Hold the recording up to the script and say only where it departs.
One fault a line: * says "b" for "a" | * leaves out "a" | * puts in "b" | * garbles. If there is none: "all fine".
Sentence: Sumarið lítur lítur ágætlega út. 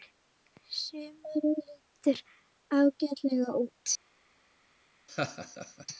* leaves out "lítur"